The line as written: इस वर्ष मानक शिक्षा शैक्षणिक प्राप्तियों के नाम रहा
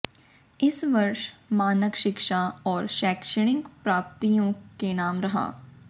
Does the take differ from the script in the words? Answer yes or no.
yes